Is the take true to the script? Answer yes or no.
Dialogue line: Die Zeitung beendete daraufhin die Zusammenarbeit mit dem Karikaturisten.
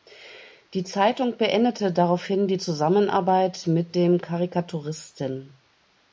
yes